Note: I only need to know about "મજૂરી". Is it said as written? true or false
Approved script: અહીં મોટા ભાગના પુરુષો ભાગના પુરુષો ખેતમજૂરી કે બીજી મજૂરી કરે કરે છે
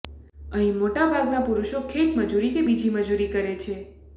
true